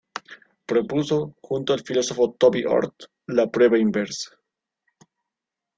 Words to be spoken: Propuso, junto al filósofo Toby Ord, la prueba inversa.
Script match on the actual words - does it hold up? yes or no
yes